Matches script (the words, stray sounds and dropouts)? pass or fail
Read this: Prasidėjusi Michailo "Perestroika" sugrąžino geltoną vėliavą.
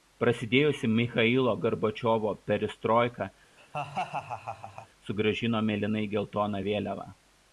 fail